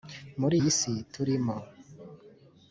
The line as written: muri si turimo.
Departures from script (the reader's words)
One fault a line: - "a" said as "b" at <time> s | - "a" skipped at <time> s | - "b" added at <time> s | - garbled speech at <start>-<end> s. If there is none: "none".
- "iyi" added at 0.6 s